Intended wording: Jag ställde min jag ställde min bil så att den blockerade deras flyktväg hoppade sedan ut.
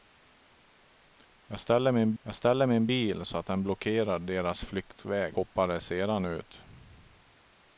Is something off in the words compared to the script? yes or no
no